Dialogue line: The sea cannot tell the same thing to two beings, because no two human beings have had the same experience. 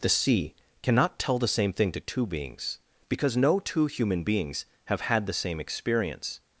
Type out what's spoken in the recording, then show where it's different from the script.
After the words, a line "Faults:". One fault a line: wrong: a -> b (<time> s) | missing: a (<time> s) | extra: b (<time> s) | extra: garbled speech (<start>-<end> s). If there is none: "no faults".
The sea cannot tell the same thing to two beings, because no two human beings have had the same experience.
Faults:
no faults